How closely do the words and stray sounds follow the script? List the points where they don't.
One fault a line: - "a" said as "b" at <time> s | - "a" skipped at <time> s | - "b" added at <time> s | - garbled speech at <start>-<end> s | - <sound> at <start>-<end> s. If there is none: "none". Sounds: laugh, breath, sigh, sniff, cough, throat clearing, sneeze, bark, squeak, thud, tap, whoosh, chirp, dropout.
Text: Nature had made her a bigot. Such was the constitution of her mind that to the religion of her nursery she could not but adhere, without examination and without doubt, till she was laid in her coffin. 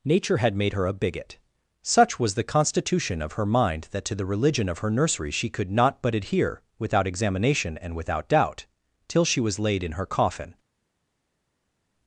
none